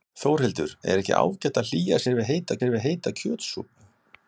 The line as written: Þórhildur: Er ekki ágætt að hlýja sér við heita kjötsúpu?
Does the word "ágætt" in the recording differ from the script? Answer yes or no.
no